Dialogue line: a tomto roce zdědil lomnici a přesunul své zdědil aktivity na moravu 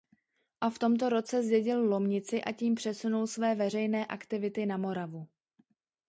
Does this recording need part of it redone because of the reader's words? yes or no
yes